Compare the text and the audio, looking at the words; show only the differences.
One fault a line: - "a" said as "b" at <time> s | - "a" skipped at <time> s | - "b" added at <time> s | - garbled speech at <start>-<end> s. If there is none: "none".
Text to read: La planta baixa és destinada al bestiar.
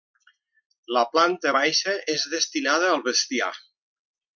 none